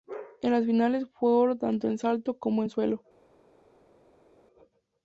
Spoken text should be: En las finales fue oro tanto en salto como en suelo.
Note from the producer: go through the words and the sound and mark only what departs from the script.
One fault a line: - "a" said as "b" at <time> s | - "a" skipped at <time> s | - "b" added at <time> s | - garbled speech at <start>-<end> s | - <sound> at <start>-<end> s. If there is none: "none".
none